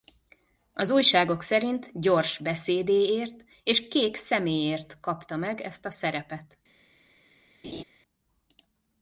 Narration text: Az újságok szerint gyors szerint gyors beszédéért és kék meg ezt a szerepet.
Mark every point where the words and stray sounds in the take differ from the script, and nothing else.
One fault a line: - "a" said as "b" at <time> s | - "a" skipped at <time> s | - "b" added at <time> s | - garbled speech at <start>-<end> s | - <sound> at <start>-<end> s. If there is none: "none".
- "szerint gyors" skipped at 2.4 s
- "szeméért kapta" added at 4.2 s
- laugh at 7.6-7.8 s